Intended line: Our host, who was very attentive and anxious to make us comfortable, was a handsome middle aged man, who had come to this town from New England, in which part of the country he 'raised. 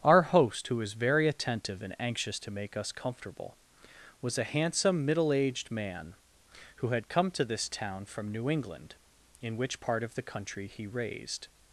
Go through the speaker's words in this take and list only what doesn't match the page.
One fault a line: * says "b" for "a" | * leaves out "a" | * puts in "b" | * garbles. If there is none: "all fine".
all fine